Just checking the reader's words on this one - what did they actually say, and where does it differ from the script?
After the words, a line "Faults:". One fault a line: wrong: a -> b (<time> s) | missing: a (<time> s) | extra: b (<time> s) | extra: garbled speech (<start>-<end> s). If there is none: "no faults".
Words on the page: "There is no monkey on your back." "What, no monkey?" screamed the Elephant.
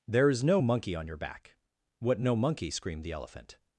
"There is no monkey on your back." "What, no monkey?" screamed the Elephant.
Faults:
no faults